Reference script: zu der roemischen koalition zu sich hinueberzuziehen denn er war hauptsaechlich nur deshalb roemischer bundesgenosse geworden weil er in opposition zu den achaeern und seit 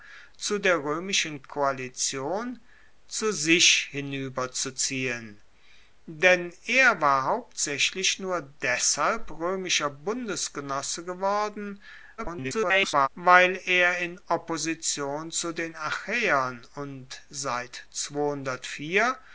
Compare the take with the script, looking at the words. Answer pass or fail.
fail